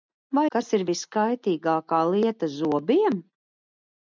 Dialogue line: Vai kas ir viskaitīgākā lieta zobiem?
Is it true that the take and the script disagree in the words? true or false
false